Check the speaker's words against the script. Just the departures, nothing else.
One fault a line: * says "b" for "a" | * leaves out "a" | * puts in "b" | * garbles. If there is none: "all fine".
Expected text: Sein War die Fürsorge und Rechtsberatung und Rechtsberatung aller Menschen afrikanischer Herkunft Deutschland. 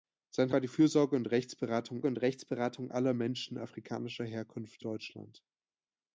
all fine